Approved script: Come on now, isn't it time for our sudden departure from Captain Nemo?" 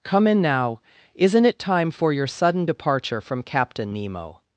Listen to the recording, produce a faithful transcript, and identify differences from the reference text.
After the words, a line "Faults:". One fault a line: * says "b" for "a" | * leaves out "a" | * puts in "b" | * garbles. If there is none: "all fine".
Come in now, isn't it time for your sudden departure from Captain Nemo?"
Faults:
* says "in" for "on"
* says "your" for "our"